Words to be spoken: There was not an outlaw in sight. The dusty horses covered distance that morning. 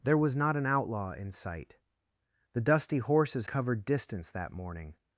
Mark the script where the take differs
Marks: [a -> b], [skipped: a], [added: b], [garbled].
There was not an outlaw in sight. The dusty horses covered distance that morning.